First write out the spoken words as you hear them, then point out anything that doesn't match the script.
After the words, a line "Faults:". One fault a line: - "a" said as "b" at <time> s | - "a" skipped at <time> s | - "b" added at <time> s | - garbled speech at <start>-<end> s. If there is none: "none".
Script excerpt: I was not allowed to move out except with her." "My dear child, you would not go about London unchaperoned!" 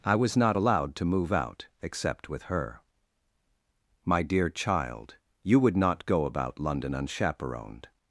I was not allowed to move out except with her." "My dear child, you would not go about London unchaperoned!"
Faults:
none